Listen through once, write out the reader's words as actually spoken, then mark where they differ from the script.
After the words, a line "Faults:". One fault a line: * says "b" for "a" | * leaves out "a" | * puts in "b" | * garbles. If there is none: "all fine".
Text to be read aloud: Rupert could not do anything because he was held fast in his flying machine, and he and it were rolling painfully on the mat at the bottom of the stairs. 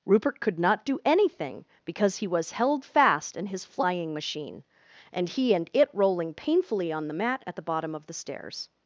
Rupert could not do anything because he was held fast in his flying machine, and he and it rolling painfully on the mat at the bottom of the stairs.
Faults:
* leaves out "were"